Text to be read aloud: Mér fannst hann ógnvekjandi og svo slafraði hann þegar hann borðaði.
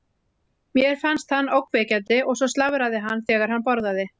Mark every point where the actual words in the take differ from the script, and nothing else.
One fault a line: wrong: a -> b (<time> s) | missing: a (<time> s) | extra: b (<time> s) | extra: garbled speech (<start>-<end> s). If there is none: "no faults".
no faults